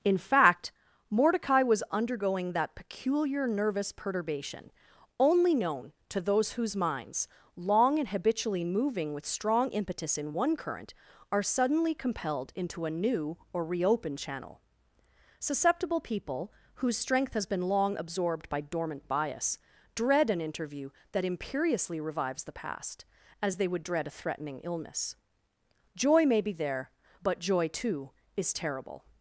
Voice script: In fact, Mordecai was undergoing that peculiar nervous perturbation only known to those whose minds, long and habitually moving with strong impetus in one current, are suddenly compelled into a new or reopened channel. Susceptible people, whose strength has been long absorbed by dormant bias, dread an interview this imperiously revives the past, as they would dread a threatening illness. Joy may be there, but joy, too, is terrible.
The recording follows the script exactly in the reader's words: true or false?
false